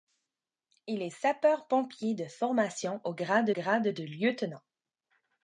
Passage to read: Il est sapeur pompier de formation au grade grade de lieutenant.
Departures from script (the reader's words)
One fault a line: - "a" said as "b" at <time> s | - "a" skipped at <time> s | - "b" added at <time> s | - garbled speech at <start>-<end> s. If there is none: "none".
none